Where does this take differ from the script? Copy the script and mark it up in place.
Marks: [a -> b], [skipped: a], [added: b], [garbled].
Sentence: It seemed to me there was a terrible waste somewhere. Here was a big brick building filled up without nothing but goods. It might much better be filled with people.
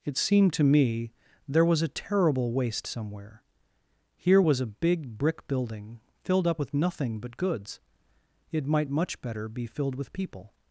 It seemed to me there was a terrible waste somewhere. Here was a big brick building filled up [without -> with] nothing but goods. It might much better be filled with people.